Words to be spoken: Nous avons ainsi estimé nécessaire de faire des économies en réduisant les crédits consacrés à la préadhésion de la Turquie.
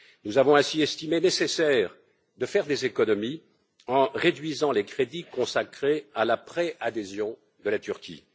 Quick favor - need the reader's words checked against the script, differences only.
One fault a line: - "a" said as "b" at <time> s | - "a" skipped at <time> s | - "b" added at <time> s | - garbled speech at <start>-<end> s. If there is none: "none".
none